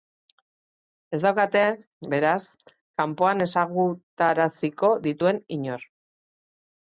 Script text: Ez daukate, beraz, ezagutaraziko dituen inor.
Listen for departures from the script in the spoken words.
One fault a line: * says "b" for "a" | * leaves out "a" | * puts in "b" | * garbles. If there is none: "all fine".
* puts in "kanpoan"